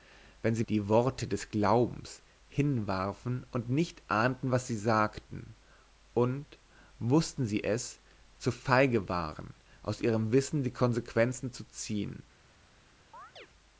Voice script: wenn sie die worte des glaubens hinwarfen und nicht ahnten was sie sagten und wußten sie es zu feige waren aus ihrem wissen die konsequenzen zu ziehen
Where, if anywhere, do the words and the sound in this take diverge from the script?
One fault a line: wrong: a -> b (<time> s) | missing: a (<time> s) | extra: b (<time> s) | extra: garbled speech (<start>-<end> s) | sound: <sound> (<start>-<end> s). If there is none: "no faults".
sound: chirp (13.1-13.5 s)